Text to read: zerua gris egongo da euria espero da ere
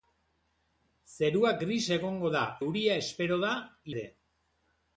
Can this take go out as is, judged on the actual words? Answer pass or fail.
pass